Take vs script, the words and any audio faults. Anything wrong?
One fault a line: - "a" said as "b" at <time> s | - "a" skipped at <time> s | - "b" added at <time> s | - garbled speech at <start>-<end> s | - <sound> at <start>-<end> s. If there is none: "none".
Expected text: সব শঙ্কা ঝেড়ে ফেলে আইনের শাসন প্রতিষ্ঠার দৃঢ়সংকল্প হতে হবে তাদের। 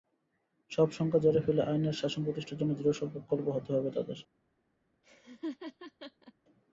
- "জন্য" added at 2.6 s
- laugh at 5.0-6.3 s